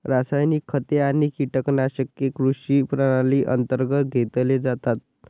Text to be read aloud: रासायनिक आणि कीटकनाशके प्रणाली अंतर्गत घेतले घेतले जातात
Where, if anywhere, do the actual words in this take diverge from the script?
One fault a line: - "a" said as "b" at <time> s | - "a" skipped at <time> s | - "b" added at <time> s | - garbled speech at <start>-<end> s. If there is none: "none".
- "खते" added at 0.7 s
- "कृषी" added at 2.3 s
- "घेतले" skipped at 4.6 s